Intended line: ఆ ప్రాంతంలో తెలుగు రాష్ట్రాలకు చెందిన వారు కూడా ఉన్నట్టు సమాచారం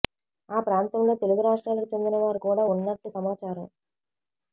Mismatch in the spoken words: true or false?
false